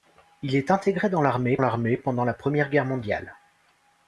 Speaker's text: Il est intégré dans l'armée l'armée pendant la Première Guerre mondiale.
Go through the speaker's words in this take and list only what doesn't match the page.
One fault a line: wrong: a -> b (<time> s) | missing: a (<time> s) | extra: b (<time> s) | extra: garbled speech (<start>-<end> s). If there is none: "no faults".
no faults